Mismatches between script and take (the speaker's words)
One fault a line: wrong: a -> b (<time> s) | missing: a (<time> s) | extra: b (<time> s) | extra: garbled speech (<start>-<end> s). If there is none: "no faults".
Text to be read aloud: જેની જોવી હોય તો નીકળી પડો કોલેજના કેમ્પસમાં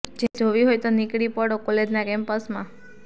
no faults